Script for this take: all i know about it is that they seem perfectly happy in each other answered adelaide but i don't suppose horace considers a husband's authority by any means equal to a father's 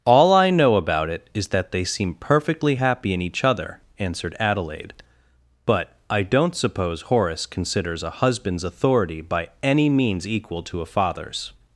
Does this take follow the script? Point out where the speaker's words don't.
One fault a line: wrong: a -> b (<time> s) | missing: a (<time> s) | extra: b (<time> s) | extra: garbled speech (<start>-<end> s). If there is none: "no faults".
no faults